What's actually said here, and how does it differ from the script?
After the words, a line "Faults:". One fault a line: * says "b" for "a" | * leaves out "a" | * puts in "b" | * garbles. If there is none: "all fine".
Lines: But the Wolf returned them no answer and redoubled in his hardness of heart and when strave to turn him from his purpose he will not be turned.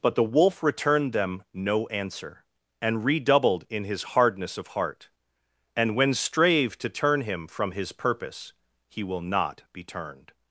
But the Wolf returned them no answer and redoubled in his hardness of heart and when strave to turn him from his purpose he will not be turned.
Faults:
all fine